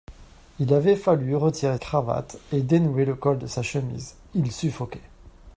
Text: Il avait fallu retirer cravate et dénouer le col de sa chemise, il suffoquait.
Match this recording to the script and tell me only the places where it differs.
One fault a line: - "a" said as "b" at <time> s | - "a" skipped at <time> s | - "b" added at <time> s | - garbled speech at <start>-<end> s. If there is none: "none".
none